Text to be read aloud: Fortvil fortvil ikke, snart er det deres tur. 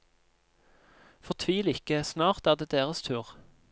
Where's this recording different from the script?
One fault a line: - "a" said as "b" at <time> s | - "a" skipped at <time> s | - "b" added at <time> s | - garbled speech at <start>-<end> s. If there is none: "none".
- "fortvil" skipped at 1.7 s